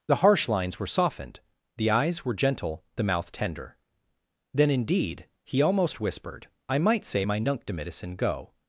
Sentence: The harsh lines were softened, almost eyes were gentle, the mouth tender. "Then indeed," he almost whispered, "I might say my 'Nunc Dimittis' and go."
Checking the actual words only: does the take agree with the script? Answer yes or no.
no